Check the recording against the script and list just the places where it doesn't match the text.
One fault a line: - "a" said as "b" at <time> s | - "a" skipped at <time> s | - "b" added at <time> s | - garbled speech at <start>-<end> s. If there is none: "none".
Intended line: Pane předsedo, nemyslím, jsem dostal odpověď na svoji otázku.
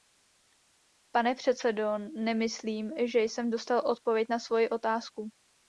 - "že" added at 3.0 s